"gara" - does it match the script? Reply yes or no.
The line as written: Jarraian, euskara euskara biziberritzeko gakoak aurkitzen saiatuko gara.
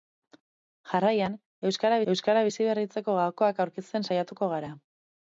yes